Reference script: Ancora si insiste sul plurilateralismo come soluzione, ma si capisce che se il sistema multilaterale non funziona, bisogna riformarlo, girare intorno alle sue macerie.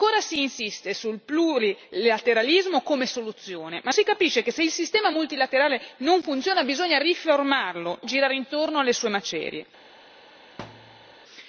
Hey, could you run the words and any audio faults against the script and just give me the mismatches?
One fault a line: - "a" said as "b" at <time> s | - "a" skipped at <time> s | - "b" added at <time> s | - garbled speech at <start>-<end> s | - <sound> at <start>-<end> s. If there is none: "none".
- thud at 10.6-11.1 s